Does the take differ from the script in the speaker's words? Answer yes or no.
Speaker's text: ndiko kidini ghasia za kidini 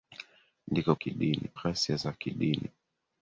no